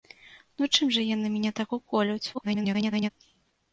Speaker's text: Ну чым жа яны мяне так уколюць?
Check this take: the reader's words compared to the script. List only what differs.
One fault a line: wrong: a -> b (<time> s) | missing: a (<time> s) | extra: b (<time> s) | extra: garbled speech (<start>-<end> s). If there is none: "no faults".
extra: garbled speech (2.3-3.1 s)